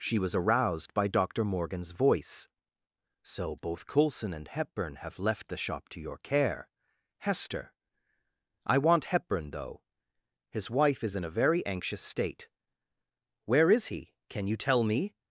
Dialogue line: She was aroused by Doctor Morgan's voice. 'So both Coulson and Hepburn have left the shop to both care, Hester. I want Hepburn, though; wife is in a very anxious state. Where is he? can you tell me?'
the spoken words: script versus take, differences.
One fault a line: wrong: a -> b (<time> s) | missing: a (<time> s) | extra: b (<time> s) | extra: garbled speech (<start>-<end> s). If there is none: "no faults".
wrong: both -> your (6.0 s)
extra: his (10.5 s)